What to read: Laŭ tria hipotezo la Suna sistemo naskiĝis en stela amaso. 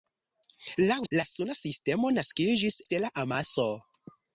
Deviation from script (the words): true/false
true